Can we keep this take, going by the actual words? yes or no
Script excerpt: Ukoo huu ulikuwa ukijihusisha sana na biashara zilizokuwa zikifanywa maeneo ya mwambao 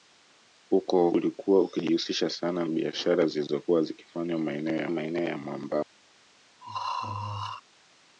no